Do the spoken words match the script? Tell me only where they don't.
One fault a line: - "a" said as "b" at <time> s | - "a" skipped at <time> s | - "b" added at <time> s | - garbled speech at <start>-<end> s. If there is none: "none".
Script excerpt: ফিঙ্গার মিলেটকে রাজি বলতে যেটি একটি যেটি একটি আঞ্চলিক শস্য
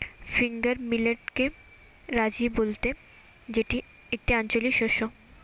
- "যেটি একটি" skipped at 4.3 s